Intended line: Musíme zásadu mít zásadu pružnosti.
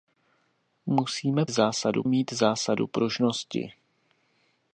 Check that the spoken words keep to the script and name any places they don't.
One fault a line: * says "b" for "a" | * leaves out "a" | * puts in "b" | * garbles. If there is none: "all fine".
all fine